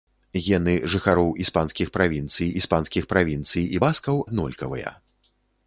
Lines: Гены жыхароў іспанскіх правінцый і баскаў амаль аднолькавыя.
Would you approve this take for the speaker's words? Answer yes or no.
no